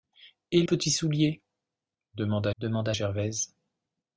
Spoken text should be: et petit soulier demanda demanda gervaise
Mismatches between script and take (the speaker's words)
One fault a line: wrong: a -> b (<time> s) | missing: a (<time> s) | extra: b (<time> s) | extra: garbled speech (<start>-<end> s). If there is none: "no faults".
no faults